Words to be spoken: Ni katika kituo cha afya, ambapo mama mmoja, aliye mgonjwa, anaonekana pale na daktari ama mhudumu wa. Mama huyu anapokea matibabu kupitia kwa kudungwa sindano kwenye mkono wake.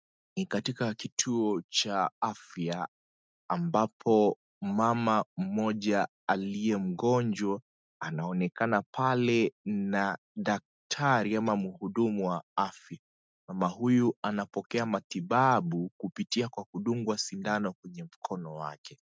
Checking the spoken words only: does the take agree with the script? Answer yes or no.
no